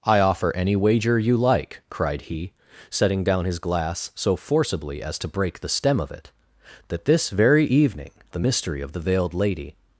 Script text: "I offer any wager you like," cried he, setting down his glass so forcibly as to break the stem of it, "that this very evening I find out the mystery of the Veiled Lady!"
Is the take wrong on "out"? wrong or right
wrong